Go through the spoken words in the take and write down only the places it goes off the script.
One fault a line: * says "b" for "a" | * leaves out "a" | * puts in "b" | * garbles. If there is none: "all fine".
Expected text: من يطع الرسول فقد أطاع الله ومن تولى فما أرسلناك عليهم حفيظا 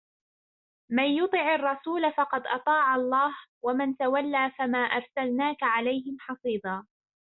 all fine